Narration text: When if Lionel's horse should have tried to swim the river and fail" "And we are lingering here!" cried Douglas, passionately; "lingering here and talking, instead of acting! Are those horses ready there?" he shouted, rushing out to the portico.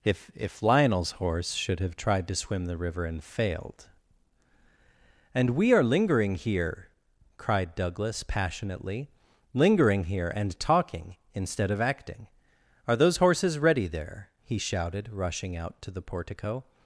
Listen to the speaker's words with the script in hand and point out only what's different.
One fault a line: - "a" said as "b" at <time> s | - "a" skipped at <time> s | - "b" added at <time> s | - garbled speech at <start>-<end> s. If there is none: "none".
- "When" said as "If" at 0.0 s
- "fail" said as "failed" at 3.2 s